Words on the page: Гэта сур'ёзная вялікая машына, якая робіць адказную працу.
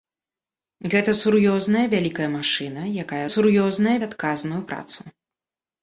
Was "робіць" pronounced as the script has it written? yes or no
no